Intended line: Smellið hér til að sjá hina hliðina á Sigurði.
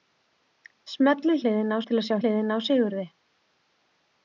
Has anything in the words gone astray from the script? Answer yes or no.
yes